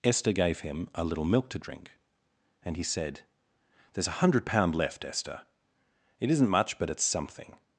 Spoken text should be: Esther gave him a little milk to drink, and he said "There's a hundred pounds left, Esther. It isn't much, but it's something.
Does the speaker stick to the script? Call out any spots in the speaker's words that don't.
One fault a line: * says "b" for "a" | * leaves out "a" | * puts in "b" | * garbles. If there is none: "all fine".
* says "pound" for "pounds"